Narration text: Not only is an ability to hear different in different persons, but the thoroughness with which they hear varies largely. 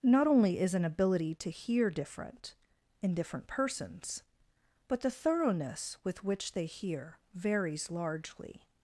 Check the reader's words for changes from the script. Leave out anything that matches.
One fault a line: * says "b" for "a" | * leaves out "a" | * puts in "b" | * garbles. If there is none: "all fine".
all fine